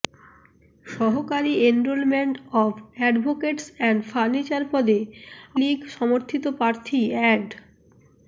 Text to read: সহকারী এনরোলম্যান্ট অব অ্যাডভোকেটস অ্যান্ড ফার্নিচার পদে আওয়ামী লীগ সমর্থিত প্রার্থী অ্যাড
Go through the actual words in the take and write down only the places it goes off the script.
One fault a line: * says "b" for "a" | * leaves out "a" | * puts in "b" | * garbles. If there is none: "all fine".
* leaves out "আওয়ামী"